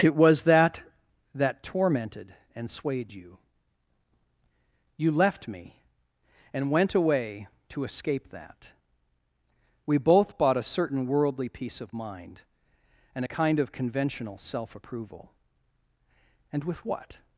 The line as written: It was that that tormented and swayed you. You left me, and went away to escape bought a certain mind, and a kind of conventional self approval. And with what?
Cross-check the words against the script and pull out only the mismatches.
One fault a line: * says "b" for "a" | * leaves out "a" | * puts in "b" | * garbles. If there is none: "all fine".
* puts in "that We both"
* puts in "worldly peace of"